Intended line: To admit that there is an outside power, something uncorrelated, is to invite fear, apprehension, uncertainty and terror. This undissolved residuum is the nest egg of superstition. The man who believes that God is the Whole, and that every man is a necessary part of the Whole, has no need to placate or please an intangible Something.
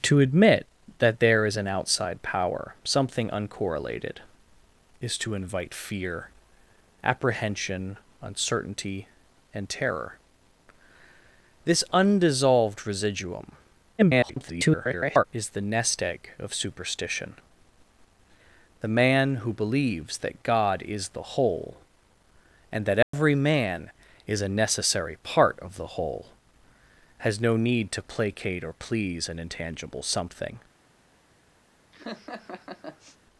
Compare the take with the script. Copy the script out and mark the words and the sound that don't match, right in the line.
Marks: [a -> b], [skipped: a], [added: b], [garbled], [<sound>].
To admit that there is an outside power, something uncorrelated, is to invite fear, apprehension, uncertainty and terror. This undissolved residuum [garbled] is the nest egg of superstition. The man who believes that God is the Whole, and that every [dropout] man is a necessary part of the Whole, has no need to placate or please an intangible Something. [laugh]